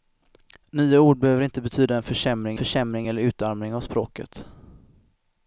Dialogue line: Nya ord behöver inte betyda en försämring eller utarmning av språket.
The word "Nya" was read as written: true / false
true